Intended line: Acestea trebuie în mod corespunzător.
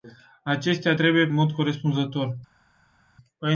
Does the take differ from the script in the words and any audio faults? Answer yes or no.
no